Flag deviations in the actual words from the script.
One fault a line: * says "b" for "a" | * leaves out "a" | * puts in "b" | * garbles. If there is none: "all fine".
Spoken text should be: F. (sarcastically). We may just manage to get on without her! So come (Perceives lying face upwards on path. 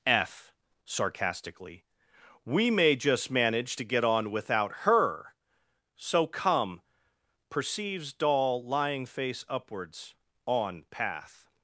* puts in "doll"